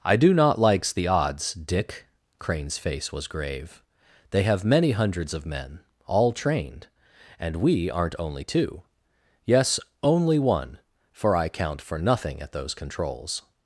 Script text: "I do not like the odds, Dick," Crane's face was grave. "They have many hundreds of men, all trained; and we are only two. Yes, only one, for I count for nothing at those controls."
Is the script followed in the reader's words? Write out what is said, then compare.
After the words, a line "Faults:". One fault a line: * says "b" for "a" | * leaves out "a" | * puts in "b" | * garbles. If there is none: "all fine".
"I do not likes the odds, Dick," Crane's face was grave. "They have many hundreds of men, all trained; and we aren't only two. Yes, only one, for I count for nothing at those controls."
Faults:
* says "likes" for "like"
* says "aren't" for "are"